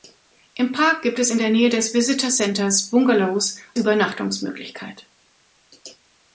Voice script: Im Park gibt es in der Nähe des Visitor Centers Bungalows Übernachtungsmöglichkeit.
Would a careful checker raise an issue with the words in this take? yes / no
no